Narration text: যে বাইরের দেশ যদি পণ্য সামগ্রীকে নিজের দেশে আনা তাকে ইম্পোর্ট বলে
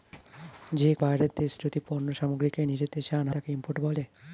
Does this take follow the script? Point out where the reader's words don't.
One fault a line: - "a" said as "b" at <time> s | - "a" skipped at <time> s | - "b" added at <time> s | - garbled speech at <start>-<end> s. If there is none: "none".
none